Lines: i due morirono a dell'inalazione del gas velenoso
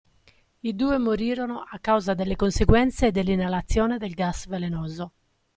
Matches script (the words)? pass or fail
fail